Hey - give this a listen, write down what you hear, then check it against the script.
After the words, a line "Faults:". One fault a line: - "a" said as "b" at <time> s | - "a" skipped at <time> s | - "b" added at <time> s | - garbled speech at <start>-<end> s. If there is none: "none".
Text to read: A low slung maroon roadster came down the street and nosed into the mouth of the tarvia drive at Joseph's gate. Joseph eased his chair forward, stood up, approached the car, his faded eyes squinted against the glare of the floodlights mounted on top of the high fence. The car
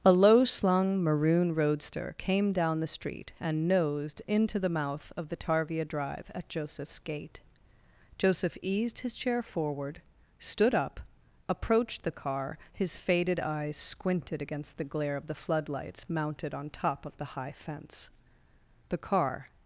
A low slung maroon roadster came down the street and nosed into the mouth of the tarvia drive at Joseph's gate. Joseph eased his chair forward, stood up, approached the car, his faded eyes squinted against the glare of the floodlights mounted on top of the high fence. The car
Faults:
none